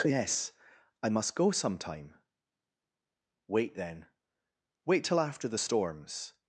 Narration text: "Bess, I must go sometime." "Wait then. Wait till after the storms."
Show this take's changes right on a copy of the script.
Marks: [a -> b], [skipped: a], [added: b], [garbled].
["Bess, -> Yes] I must go sometime." "Wait then. Wait till after the storms."